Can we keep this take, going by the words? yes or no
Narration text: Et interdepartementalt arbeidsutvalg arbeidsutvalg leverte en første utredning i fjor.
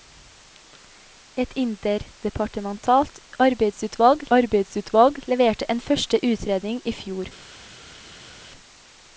yes